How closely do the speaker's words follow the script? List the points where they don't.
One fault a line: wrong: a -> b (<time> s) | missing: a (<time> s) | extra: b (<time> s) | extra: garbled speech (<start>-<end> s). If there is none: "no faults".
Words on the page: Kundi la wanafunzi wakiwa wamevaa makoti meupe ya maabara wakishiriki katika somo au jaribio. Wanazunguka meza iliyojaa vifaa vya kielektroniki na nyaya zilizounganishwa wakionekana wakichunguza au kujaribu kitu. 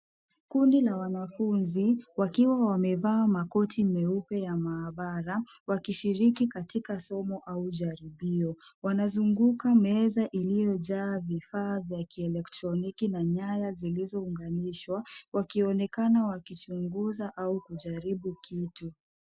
no faults